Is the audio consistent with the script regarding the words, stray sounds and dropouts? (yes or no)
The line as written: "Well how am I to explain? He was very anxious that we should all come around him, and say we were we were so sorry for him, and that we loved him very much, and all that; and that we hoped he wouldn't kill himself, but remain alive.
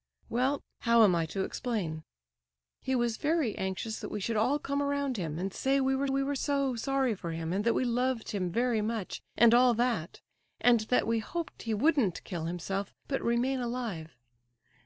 yes